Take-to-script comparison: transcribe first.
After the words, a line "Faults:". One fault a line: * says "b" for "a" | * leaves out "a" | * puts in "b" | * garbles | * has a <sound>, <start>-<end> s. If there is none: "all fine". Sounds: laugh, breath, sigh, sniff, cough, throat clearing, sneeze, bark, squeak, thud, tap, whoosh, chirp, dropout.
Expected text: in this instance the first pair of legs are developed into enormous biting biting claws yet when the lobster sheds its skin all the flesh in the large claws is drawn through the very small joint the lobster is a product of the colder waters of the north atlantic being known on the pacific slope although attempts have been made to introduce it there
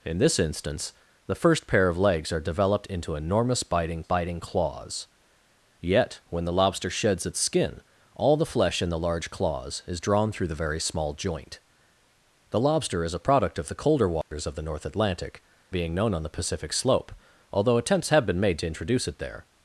in this instance the first pair of legs are developed into enormous biting biting claws yet when the lobster sheds its skin all the flesh in the large claws is drawn through the very small joint the lobster is a product of the colder waters of the north atlantic being known on the pacific slope although attempts have been made to introduce it there
Faults:
* has a dropout, 14.2-14.3 s